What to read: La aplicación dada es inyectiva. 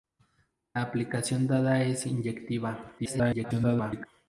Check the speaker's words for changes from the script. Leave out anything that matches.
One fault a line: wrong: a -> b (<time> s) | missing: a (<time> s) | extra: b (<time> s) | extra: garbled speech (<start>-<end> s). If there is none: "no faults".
extra: garbled speech (3.0-4.1 s)